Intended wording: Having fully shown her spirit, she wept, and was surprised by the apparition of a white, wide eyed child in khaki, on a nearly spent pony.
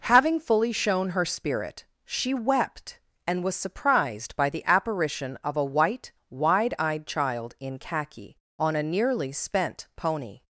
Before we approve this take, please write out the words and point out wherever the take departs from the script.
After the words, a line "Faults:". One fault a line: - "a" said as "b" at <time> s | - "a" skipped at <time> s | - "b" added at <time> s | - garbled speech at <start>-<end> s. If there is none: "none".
Having fully shown her spirit, she wept, and was surprised by the apparition of a white, wide eyed child in khaki, on a nearly spent pony.
Faults:
none